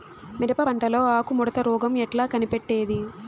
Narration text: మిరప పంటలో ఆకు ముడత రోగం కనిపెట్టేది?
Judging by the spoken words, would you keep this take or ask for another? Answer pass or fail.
fail